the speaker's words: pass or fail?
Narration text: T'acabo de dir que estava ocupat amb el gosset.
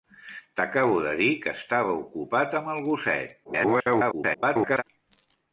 fail